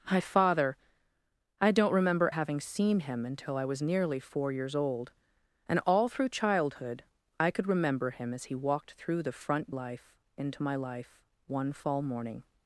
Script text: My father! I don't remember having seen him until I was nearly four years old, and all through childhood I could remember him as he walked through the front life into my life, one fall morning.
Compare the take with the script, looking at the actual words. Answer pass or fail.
pass